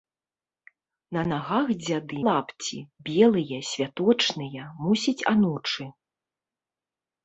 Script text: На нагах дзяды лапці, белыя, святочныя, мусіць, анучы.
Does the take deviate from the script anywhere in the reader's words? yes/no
no